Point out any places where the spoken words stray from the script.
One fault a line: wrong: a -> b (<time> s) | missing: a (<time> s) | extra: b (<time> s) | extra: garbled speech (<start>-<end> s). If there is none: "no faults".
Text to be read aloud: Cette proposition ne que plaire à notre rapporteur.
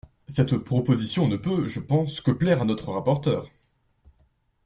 extra: peut je pense (1.4 s)